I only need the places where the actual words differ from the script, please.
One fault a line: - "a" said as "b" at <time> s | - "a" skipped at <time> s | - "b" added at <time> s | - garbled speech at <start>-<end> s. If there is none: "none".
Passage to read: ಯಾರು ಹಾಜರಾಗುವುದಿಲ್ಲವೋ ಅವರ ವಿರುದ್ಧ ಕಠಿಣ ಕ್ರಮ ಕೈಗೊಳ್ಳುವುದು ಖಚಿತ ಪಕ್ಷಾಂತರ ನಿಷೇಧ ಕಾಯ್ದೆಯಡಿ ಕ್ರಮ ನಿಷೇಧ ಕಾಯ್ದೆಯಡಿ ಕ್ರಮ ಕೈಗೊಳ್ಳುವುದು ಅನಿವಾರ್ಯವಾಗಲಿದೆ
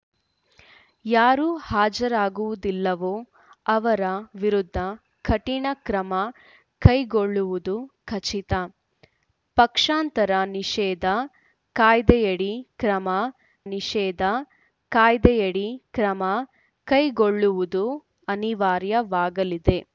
none